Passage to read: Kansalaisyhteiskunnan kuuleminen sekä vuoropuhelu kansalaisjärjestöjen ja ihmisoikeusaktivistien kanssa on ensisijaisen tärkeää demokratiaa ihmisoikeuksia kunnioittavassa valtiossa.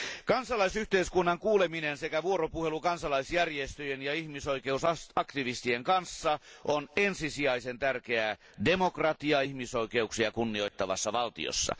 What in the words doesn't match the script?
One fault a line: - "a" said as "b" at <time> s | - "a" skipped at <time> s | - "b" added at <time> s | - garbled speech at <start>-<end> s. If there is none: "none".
none